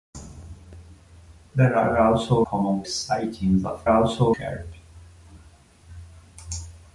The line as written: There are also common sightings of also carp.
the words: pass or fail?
pass